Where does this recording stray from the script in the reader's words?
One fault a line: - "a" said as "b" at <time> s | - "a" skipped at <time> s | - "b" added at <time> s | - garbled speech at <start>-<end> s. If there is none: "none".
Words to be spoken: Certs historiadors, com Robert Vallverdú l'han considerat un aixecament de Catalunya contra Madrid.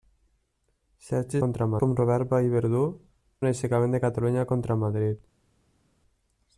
- "historiadors" said as "contra" at 1.5 s
- "l'han considerat" skipped at 2.8 s